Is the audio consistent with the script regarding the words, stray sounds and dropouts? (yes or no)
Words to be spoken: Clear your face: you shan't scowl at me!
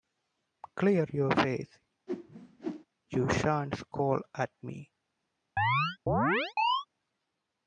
no